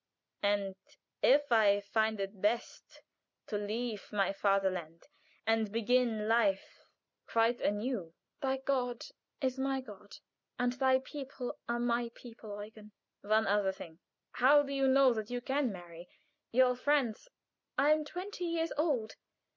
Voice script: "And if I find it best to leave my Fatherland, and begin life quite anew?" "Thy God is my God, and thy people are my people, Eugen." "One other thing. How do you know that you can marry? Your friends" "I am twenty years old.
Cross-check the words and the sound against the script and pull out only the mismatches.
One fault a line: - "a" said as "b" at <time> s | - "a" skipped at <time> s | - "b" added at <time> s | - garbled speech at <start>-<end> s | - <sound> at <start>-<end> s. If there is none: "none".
none